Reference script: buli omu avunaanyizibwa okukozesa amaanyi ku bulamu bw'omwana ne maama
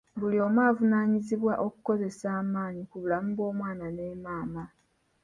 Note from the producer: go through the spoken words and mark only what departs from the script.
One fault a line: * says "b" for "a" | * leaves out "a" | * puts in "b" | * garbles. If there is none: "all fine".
all fine